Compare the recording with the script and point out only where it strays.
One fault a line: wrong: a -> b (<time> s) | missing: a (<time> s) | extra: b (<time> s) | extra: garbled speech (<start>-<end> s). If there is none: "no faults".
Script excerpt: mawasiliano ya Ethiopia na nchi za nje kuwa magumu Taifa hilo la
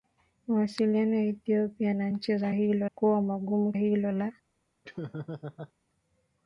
wrong: nje -> hilo (2.5 s)
missing: Taifa (3.7 s)